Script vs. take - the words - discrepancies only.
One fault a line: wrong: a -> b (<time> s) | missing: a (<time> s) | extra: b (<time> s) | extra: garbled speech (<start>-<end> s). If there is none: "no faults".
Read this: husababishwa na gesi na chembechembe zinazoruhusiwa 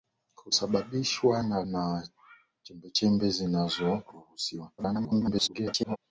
missing: gesi (1.6 s)
extra: garbled speech (4.8-6.0 s)